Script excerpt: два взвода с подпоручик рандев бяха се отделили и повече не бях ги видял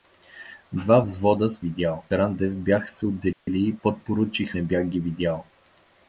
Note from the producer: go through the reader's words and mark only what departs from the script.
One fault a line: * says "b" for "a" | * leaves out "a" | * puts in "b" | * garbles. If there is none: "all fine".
* says "видял" for "подпоручик"
* says "подпоручик" for "повече"